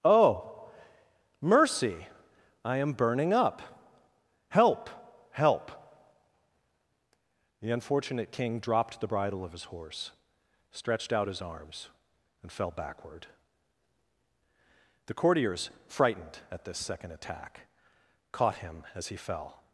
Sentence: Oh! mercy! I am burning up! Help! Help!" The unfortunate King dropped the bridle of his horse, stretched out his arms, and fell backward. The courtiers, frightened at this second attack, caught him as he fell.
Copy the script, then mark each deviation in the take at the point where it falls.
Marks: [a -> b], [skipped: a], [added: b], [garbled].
Oh! mercy! I am burning up! Help! Help!" The unfortunate King dropped the bridle of his horse, stretched out his arms, and fell backward. The courtiers, frightened at this second attack, caught him as he fell.